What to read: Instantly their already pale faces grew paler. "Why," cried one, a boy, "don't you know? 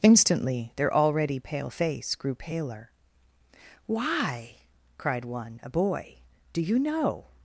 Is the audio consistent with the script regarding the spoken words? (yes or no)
no